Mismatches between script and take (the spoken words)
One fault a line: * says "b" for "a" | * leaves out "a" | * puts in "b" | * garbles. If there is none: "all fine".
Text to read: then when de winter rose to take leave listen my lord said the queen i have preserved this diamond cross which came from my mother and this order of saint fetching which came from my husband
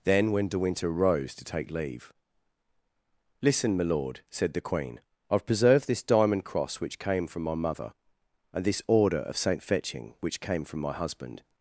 all fine